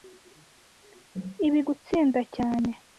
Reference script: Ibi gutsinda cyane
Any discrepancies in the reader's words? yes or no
no